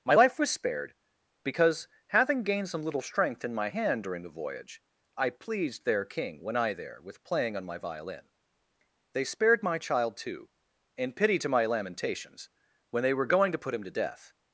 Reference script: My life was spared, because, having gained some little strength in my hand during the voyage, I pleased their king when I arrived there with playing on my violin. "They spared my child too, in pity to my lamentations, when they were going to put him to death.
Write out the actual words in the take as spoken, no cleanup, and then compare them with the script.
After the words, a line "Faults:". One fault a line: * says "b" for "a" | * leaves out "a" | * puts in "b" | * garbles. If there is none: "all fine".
My life was spared, because, having gained some little strength in my hand during the voyage, I pleased their king when I there with playing on my violin. "They spared my child too, in pity to my lamentations, when they were going to put him to death.
Faults:
* leaves out "arrived"